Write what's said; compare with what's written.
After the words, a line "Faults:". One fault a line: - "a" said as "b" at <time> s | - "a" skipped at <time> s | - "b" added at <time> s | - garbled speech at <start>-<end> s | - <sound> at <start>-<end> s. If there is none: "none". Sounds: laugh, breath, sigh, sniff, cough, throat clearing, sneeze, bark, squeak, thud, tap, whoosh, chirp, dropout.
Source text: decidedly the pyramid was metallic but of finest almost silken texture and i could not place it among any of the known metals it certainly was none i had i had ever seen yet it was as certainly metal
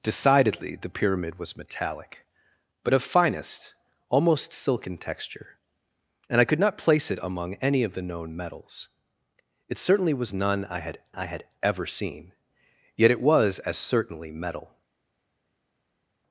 decidedly the pyramid was metallic but of finest almost silken texture and i could not place it among any of the known metals it certainly was none i had i had ever seen yet it was as certainly metal
Faults:
none